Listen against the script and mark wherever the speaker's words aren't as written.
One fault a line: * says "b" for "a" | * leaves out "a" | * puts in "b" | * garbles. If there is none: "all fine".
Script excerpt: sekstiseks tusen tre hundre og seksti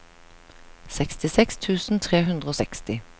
all fine